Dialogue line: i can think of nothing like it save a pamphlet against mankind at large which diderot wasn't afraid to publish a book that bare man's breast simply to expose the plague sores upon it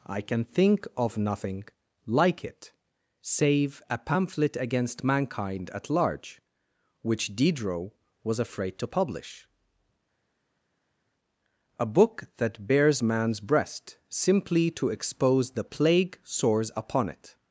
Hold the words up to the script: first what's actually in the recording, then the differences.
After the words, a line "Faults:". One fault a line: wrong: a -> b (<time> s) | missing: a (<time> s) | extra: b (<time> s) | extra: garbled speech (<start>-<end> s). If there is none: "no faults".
i can think of nothing like it save a pamphlet against mankind at large which diderot was afraid to publish a book that bares man's breast simply to expose the plague sores upon it
Faults:
wrong: wasn't -> was (8.2 s)
wrong: bare -> bares (12.7 s)